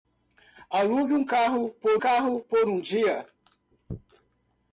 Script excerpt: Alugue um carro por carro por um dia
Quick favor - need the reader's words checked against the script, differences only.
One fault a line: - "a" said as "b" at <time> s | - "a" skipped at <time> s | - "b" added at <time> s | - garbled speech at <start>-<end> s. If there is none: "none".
none